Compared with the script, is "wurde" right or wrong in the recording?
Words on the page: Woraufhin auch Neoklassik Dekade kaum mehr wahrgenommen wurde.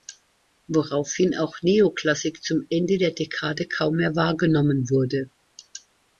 right